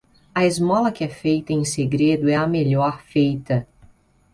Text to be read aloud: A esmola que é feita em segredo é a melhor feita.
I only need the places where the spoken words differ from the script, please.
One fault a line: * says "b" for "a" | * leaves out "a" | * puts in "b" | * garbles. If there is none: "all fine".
all fine